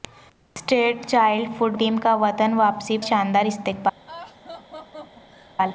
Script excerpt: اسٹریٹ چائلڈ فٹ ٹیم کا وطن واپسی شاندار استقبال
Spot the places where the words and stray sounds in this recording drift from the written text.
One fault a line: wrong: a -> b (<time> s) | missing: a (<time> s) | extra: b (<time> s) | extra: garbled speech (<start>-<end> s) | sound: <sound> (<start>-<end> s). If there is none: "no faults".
sound: laugh (4.1-5.6 s)